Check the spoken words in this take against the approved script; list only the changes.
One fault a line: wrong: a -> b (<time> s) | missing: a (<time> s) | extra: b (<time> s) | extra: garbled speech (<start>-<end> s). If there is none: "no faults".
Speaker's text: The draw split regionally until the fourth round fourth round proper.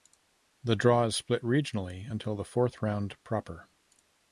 extra: is (1.0 s)
missing: fourth round (3.2 s)